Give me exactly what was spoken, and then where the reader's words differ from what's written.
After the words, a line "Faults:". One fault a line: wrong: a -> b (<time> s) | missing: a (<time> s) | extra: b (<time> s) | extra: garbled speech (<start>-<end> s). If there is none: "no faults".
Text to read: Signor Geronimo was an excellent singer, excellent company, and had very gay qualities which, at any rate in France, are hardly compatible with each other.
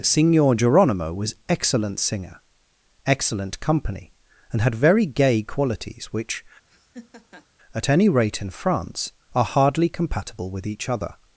Signor Geronimo was excellent singer, excellent company, and had very gay qualities which, at any rate in France, are hardly compatible with each other.
Faults:
missing: an (1.3 s)